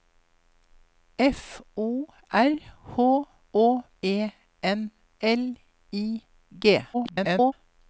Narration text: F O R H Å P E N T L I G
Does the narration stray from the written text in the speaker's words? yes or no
yes